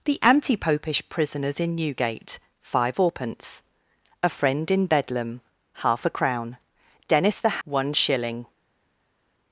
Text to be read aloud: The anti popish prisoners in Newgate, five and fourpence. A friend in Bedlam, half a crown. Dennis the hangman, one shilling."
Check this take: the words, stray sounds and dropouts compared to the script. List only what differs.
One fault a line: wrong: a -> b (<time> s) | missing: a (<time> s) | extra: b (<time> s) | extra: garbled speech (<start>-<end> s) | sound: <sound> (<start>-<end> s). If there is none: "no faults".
missing: and (3.0 s)
missing: hangman (7.6 s)